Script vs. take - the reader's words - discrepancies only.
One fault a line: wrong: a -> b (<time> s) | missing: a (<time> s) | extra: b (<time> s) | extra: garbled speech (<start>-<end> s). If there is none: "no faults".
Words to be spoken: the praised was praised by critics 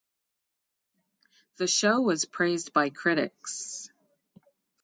wrong: praised -> show (1.7 s)